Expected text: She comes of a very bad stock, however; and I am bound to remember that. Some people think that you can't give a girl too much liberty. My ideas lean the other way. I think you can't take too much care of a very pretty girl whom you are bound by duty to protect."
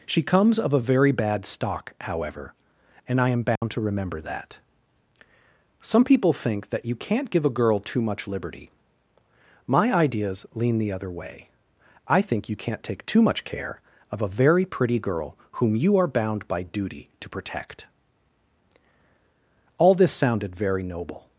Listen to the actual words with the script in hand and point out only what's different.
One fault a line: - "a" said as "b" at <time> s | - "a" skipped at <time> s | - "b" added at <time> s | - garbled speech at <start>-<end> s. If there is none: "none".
- "All this sounded very noble" added at 19.8 s